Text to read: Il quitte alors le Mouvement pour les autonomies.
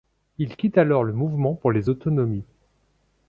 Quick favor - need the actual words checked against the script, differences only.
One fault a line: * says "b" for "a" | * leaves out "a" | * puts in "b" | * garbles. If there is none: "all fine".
all fine